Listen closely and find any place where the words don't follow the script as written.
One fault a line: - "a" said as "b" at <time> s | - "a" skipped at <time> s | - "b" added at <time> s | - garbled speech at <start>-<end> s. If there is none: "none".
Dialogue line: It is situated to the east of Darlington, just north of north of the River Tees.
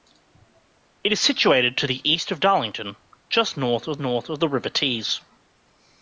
none